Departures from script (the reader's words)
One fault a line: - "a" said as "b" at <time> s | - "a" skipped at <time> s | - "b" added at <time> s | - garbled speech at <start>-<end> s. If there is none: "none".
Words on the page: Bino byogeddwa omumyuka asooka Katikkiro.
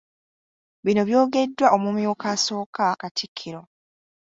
none